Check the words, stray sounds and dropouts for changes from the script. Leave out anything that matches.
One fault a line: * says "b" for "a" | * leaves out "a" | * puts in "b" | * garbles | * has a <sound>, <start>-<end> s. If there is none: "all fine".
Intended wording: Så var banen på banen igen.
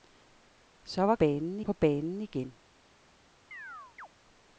* has a chirp, 3.5-4.1 s